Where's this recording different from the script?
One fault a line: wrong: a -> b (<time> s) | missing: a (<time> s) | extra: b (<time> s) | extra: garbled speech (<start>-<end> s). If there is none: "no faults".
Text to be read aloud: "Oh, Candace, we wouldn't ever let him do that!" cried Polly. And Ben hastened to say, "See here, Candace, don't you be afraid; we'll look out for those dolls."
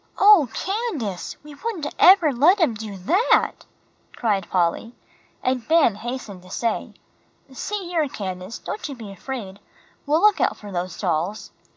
no faults